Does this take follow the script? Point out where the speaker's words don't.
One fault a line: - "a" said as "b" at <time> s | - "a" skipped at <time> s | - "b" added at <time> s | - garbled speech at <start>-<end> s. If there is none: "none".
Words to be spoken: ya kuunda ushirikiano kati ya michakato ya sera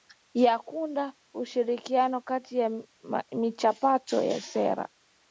none